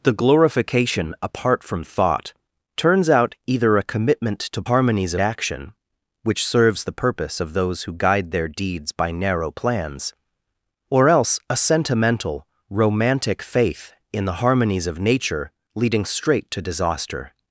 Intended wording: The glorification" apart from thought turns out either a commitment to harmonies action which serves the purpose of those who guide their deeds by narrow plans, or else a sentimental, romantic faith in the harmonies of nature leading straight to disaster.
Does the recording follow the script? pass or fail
pass